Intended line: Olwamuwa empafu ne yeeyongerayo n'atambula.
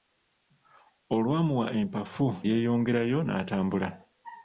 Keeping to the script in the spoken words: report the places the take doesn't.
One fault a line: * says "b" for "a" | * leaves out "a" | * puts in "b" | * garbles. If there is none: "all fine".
* leaves out "ne"